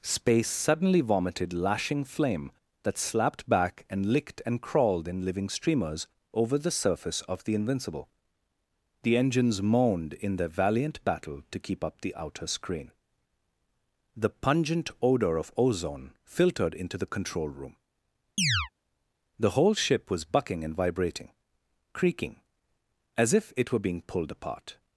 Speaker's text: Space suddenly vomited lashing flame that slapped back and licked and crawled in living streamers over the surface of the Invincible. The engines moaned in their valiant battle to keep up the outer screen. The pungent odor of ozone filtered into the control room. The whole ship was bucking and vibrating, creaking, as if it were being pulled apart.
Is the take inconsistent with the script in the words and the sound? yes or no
yes